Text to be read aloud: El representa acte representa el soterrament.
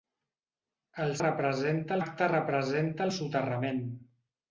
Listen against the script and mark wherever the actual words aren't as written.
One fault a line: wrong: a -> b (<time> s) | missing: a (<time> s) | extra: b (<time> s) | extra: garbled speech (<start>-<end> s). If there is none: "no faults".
no faults